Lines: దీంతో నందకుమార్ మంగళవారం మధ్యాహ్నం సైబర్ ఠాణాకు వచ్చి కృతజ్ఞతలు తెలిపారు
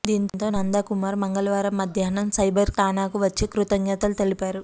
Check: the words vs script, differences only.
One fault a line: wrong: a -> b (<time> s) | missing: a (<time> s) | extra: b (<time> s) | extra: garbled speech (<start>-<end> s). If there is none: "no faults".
no faults